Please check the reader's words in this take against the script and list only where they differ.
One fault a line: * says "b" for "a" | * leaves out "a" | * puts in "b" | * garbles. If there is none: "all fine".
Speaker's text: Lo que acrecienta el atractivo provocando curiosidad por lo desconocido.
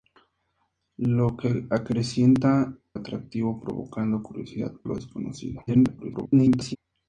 * leaves out "el"
* leaves out "por"
* garbles